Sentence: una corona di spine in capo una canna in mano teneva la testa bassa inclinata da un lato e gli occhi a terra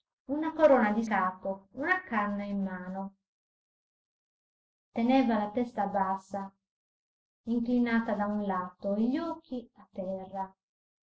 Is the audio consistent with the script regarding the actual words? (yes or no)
no